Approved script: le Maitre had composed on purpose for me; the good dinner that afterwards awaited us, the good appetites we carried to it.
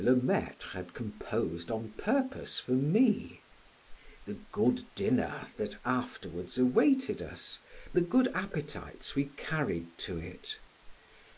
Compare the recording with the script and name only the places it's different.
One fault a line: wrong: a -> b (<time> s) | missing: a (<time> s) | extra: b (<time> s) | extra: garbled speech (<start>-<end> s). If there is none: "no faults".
no faults